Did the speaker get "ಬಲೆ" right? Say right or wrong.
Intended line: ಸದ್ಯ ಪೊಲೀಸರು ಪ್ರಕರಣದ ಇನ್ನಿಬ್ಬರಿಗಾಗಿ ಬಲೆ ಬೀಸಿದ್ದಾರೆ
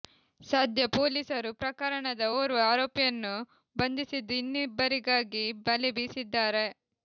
right